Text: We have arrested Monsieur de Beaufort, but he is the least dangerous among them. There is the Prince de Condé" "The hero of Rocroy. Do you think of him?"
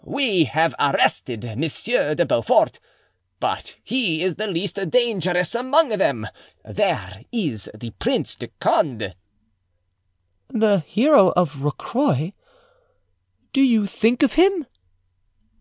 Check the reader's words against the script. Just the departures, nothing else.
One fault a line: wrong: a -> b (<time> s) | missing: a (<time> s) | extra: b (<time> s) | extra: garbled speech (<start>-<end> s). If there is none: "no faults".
no faults